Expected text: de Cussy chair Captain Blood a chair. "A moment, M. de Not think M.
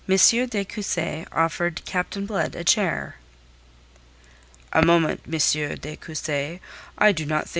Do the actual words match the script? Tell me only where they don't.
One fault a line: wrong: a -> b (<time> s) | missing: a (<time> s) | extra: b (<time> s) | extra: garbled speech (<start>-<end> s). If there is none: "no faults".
wrong: chair -> offered (1.3 s)
extra: Cussy I do (6.0 s)